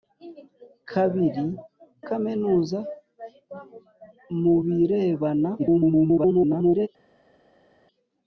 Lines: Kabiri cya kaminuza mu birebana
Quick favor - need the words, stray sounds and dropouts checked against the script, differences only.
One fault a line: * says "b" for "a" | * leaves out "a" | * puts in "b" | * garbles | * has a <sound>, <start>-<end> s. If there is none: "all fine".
* leaves out "cya"
* garbles